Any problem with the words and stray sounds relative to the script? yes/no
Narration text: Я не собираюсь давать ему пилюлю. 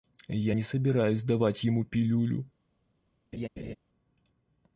yes